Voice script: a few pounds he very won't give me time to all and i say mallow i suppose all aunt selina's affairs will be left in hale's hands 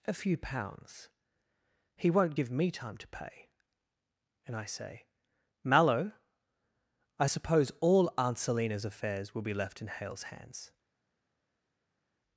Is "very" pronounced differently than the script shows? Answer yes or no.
yes